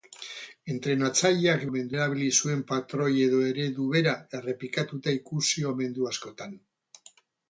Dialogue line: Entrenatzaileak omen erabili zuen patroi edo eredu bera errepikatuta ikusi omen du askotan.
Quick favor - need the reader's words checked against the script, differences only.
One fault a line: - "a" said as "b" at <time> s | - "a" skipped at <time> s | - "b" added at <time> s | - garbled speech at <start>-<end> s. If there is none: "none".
none